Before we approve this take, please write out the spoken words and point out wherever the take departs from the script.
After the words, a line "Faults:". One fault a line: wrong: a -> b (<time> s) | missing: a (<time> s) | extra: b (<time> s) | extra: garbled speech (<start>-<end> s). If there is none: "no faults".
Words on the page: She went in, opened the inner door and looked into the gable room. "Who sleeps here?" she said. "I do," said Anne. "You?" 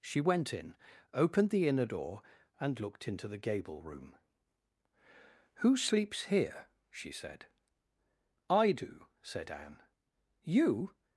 She went in, opened the inner door and looked into the gable room. "Who sleeps here?" she said. "I do," said Anne. "You?"
Faults:
no faults